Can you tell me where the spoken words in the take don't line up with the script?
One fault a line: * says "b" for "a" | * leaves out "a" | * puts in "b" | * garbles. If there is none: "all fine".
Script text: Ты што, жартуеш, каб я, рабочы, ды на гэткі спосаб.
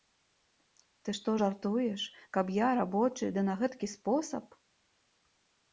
all fine